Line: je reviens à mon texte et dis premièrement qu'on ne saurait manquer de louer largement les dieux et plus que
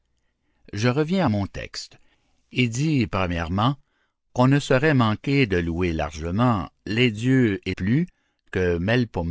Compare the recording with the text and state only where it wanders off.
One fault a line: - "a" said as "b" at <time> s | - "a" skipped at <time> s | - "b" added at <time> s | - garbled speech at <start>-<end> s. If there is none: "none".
none